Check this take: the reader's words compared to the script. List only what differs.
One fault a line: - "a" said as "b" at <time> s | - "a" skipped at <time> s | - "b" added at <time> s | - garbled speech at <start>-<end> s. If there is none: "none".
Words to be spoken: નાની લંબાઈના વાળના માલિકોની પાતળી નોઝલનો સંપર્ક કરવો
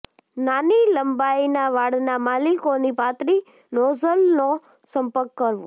none